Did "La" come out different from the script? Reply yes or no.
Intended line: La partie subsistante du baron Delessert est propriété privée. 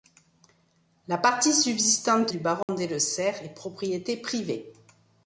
no